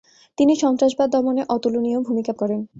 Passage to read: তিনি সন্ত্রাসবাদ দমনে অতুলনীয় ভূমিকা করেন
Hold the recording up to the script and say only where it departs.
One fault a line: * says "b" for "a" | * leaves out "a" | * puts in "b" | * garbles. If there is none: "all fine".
all fine